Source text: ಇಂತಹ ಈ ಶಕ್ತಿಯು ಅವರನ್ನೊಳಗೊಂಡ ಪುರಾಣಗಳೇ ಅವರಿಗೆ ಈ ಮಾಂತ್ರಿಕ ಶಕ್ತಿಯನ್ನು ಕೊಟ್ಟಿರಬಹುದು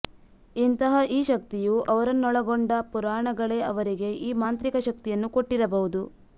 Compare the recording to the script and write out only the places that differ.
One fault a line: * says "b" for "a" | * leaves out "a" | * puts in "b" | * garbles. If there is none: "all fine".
all fine